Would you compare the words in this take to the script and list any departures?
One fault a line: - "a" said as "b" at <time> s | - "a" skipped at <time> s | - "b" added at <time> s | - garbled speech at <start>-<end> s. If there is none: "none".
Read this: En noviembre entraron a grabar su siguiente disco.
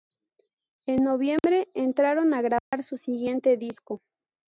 none